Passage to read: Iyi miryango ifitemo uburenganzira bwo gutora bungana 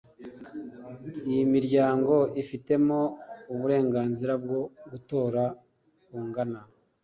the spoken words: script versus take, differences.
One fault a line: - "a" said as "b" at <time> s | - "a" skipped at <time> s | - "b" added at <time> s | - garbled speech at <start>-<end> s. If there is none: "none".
none